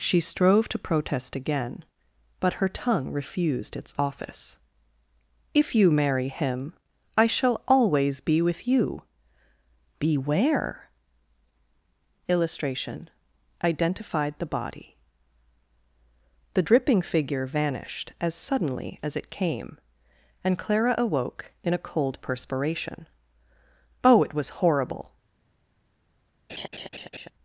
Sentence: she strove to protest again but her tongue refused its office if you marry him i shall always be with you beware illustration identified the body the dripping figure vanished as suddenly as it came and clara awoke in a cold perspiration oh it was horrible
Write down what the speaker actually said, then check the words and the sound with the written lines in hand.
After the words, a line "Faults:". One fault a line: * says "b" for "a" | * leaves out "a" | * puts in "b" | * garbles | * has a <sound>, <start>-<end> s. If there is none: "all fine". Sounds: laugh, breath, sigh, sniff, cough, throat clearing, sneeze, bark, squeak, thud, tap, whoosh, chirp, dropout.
she strove to protest again but her tongue refused its office if you marry him i shall always be with you beware illustration identified the body the dripping figure vanished as suddenly as it came and clara awoke in a cold perspiration oh it was horrible
Faults:
* has a laugh, 26.5-27.3 s